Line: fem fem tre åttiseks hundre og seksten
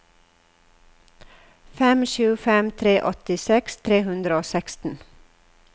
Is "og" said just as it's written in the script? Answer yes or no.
yes